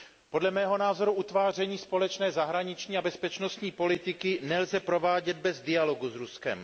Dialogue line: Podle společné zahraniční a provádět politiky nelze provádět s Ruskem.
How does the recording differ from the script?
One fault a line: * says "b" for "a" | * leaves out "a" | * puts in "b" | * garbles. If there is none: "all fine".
* puts in "mého názoru utváření"
* says "bezpečnostní" for "provádět"
* puts in "bez dialogu"